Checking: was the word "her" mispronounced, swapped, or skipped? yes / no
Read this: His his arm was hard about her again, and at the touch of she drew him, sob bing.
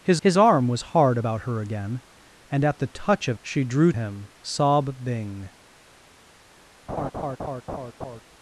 no